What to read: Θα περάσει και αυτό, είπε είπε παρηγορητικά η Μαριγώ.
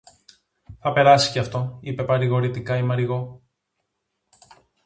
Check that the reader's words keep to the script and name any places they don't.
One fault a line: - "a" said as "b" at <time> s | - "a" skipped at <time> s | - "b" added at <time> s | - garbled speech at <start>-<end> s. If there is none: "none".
- "είπε" skipped at 2.0 s